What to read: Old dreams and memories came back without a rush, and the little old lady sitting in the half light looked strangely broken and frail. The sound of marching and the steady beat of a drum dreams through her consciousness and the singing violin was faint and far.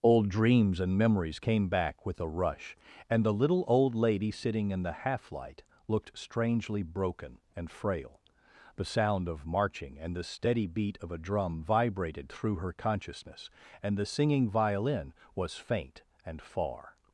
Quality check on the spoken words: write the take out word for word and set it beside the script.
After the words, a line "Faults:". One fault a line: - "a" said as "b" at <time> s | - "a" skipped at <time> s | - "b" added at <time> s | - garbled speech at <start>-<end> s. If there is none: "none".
Old dreams and memories came back with a rush, and the little old lady sitting in the half light looked strangely broken and frail. The sound of marching and the steady beat of a drum vibrated through her consciousness and the singing violin was faint and far.
Faults:
- "without" said as "with" at 2.1 s
- "dreams" said as "vibrated" at 11.6 s